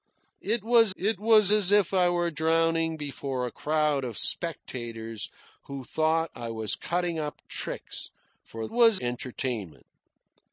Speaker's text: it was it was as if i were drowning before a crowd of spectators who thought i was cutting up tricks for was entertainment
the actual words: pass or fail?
pass